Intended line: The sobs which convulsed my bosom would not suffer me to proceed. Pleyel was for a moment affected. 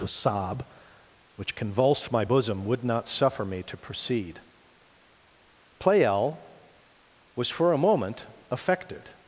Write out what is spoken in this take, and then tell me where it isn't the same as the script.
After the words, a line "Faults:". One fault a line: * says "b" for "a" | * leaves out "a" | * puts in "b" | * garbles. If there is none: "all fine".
The sob which convulsed my bosom would not suffer me to proceed. Pleyel was for a moment affected.
Faults:
* says "sob" for "sobs"